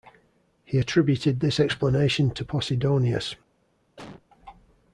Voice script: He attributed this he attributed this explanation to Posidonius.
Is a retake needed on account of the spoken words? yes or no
yes